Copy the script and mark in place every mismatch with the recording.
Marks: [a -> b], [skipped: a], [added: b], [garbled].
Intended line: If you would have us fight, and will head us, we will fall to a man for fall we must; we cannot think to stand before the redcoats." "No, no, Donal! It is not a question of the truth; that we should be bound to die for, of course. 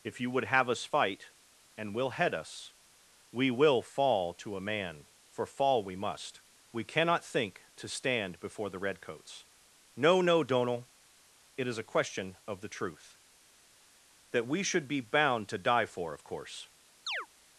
If you would have us fight, and will head us, we will fall to a man for fall we must; we cannot think to stand before the redcoats." "No, no, Donal! It is [skipped: not] a question of the truth; that we should be bound to die for, of course.